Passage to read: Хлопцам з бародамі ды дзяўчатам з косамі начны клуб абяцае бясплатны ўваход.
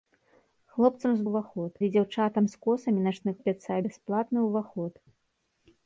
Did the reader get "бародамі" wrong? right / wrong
wrong